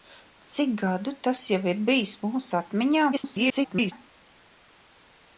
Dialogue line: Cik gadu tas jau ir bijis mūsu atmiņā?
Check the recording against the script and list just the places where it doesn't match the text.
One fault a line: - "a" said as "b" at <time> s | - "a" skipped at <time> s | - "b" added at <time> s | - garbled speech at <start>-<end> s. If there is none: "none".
- garbled speech at 3.1-3.9 s